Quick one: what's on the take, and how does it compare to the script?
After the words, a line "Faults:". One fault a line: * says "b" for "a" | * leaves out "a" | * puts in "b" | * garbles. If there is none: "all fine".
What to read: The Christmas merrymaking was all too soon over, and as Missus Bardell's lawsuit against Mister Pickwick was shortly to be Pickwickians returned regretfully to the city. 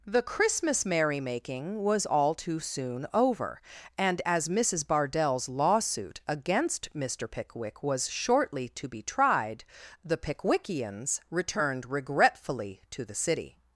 The Christmas merrymaking was all too soon over, and as Missus Bardell's lawsuit against Mister Pickwick was shortly to be tried, the Pickwickians returned regretfully to the city.
Faults:
* puts in "tried the"